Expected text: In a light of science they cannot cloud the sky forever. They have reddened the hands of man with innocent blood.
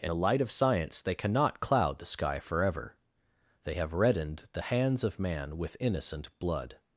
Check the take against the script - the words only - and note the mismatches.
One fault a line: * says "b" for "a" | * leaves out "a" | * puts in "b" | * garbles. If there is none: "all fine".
all fine